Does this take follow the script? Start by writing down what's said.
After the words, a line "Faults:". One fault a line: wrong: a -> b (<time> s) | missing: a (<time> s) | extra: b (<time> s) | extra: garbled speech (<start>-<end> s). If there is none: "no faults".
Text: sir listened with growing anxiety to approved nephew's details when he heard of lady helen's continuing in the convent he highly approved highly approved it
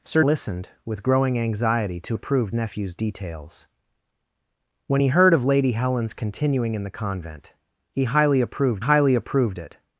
sir listened with growing anxiety to approved nephew's details when he heard of lady helen's continuing in the convent he highly approved highly approved it
Faults:
no faults